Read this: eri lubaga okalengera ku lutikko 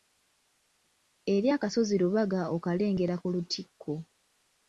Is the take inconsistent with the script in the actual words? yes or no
yes